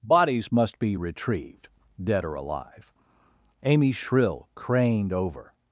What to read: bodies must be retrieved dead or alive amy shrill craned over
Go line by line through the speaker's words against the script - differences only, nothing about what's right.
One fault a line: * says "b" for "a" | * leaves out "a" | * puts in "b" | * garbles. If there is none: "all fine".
all fine